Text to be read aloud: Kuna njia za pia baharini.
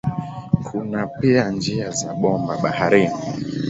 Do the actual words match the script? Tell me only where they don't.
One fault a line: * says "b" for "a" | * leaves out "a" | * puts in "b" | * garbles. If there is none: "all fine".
* puts in "pia"
* says "bomba" for "pia"